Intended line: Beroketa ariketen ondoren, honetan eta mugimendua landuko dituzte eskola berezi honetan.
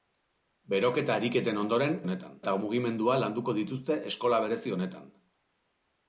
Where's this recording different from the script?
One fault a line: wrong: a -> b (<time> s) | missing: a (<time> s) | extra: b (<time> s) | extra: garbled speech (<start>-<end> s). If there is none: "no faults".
no faults